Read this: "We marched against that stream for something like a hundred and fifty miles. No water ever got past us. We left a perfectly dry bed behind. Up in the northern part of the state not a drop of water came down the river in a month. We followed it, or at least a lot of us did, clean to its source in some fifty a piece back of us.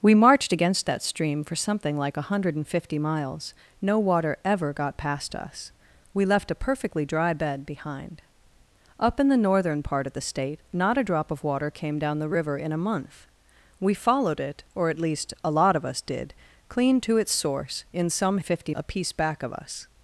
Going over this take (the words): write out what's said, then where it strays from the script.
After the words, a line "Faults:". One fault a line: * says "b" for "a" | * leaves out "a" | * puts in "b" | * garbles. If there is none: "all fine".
"We marched against that stream for something like a hundred and fifty miles. No water ever got past us. We left a perfectly dry bed behind. Up in the northern part of the state not a drop of water came down the river in a month. We followed it, or at least a lot of us did, clean to its source in some fifty a piece back of us.
Faults:
all fine